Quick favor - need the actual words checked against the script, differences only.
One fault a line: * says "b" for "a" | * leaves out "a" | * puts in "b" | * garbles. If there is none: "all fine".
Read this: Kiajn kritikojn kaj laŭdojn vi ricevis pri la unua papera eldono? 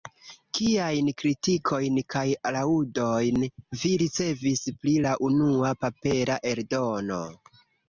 all fine